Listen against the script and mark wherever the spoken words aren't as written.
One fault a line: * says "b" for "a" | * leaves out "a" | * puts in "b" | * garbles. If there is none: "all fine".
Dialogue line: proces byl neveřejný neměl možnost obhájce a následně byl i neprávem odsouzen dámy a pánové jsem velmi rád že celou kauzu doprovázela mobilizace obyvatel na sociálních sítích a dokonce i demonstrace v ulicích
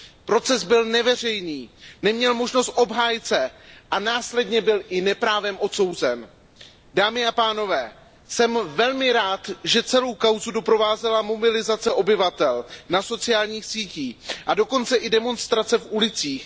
all fine